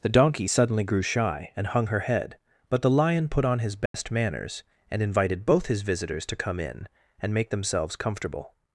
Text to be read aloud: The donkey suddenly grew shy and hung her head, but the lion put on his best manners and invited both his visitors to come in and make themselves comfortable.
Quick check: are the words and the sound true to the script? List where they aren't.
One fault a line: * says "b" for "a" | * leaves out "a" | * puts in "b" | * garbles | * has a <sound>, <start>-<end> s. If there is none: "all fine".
* has a dropout, 3.9-3.9 s